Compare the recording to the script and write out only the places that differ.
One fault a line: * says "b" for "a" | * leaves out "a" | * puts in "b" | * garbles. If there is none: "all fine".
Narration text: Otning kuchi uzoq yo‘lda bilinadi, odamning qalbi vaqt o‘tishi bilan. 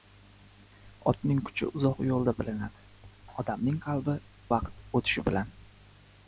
all fine